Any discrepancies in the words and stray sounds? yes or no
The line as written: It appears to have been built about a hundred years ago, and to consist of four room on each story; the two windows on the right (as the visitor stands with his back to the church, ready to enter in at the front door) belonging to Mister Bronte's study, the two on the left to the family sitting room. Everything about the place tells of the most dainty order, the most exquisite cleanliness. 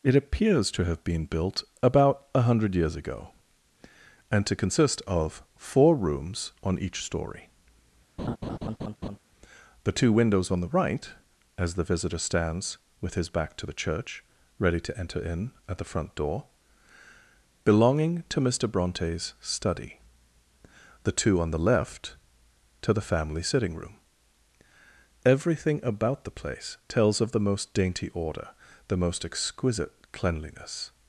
yes